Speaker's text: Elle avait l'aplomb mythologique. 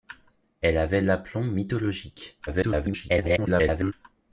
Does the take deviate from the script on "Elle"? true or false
false